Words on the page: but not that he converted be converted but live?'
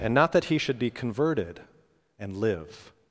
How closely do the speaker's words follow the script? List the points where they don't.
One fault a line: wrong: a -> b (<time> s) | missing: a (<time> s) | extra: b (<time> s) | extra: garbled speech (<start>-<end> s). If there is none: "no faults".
wrong: but -> and (0.0 s)
wrong: converted -> should (0.6 s)
wrong: but -> and (2.2 s)